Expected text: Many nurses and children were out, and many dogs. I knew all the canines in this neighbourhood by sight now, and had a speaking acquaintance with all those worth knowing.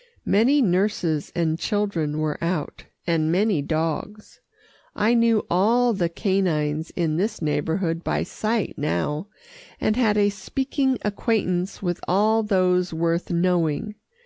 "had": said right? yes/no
yes